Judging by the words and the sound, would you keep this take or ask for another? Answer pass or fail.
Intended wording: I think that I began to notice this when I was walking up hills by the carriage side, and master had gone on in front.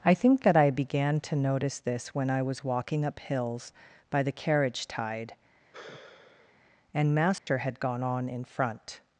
fail